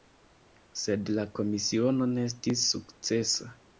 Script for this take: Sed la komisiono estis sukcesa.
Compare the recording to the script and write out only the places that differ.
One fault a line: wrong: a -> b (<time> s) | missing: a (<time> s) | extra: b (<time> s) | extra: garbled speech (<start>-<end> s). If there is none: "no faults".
extra: ne (2.1 s)